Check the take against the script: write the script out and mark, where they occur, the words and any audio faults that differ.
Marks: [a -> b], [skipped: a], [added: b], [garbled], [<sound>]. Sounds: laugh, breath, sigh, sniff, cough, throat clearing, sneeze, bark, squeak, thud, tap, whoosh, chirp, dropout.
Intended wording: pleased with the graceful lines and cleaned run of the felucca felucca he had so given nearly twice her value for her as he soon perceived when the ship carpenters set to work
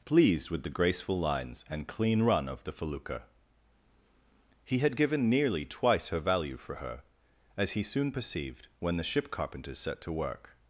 pleased with the graceful lines and [cleaned -> clean] run of the felucca [skipped: felucca] he had [skipped: so] given nearly twice her value for her as he soon perceived when the ship carpenters set to work